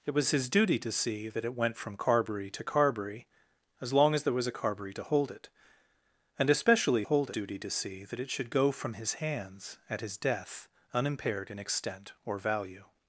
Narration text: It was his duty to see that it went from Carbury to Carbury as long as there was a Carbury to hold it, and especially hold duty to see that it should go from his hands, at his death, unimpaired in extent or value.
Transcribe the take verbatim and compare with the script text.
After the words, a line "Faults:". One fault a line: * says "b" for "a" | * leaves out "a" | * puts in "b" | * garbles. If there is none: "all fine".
It was his duty to see that it went from Carbury to Carbury as long as there was a Carbury to hold it, and especially hold duty to see that it should go from his hands, at his death, unimpaired in extent or value.
Faults:
all fine